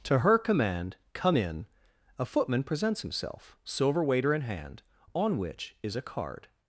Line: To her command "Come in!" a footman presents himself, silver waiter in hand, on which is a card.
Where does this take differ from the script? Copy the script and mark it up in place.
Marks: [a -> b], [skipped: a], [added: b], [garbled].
To her command "Come in!" a footman presents himself, silver waiter in hand, on which is a card.